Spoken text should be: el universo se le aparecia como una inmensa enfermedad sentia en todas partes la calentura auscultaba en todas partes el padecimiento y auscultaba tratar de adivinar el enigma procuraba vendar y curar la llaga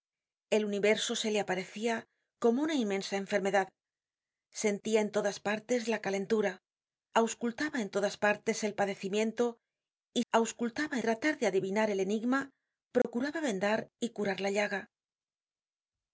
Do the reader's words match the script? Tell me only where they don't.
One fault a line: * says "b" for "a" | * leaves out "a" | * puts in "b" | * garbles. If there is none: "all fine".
all fine